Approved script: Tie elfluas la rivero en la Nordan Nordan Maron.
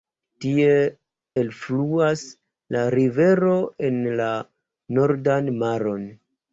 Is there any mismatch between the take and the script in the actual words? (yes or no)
yes